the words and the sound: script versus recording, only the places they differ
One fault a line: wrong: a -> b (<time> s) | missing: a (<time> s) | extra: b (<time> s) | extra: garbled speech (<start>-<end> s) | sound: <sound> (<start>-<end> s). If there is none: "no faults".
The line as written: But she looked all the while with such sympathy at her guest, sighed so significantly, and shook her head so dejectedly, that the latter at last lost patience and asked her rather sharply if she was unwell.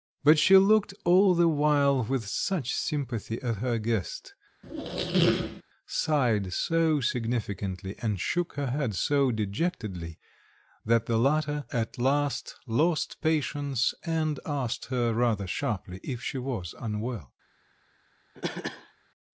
sound: squeak (4.6-5.6 s)
sound: cough (18.4-18.9 s)